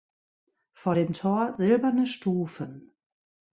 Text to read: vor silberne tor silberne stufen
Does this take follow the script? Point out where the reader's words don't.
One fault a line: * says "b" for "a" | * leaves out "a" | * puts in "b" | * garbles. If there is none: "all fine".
* says "dem" for "silberne"